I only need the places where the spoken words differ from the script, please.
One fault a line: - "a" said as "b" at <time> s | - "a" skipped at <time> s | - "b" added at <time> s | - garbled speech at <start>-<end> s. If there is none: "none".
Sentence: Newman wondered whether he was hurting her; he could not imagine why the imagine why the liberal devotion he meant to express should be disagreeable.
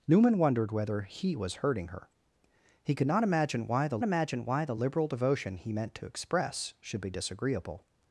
none